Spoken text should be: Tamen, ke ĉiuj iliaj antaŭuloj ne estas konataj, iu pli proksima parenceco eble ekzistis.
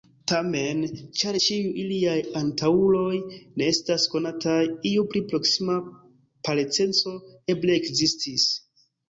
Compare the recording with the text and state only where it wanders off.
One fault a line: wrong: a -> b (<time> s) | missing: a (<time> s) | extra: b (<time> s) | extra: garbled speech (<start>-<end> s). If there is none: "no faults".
wrong: ke -> ĉar (1.2 s)